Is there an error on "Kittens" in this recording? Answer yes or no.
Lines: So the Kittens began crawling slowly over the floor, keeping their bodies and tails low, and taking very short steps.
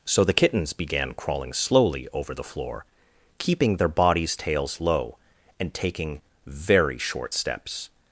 no